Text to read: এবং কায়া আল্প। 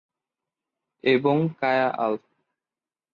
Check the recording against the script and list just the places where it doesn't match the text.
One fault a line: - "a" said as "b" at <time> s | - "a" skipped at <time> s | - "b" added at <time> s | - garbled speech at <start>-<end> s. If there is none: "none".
none